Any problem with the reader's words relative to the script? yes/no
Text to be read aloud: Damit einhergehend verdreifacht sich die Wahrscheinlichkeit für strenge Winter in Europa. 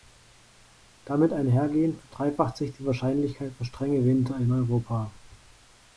no